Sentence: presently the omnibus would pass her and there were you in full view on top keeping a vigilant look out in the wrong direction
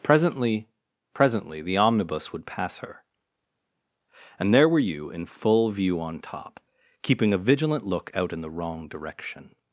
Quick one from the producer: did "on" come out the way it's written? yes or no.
yes